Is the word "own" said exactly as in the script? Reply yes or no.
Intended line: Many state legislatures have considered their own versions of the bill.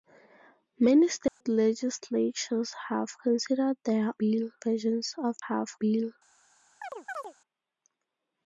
no